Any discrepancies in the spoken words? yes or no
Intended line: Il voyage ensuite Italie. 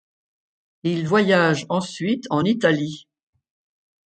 yes